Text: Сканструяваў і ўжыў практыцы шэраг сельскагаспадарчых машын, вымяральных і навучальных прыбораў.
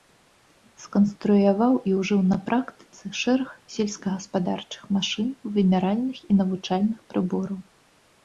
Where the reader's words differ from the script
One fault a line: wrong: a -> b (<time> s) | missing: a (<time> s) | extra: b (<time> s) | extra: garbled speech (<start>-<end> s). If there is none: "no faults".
extra: на (2.3 s)